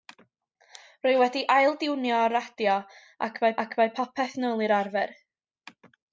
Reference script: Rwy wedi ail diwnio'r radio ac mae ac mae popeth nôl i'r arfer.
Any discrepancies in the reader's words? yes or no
no